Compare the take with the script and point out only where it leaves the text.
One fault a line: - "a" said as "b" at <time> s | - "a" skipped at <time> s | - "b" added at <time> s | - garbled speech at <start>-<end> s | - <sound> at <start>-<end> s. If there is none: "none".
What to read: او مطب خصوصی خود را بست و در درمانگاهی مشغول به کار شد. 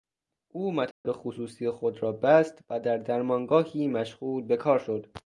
- dropout at 0.9-1.0 s